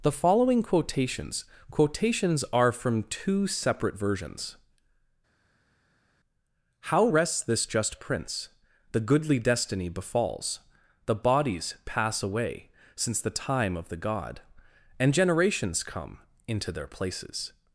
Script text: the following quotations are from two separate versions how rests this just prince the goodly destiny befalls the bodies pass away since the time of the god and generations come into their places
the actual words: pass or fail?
fail